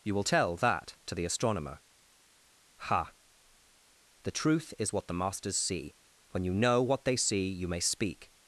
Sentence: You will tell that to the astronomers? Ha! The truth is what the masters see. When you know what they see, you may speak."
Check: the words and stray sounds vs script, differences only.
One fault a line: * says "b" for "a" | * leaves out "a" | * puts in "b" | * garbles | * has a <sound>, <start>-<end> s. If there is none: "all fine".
* says "astronomer" for "astronomers"